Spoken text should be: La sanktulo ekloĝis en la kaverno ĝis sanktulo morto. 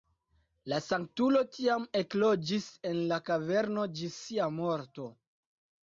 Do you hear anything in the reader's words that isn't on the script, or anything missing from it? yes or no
yes